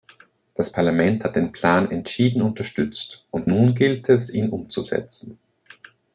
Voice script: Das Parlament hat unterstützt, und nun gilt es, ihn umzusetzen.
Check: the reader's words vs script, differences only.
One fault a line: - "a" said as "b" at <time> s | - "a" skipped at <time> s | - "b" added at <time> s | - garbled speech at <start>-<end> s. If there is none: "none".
- "den Plan entschieden" added at 1.4 s